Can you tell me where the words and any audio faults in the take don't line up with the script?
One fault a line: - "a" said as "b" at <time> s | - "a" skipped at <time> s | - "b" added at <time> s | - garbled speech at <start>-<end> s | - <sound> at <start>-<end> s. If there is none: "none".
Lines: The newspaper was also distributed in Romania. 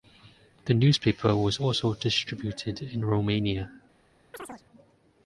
- chirp at 4.3-4.6 s